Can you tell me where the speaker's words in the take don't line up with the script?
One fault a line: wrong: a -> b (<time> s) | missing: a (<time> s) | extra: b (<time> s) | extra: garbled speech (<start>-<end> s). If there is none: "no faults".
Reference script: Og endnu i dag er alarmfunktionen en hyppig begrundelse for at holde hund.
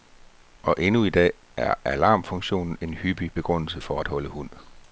no faults